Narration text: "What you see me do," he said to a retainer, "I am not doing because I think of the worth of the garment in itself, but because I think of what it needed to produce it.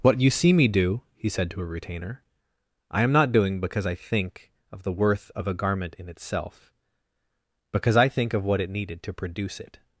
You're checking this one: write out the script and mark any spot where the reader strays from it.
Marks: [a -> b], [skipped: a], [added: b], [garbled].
"What you see me do," he said to a retainer, "I am not doing because I think of the worth of [the -> a] garment in itself, [skipped: but] because I think of what it needed to produce it.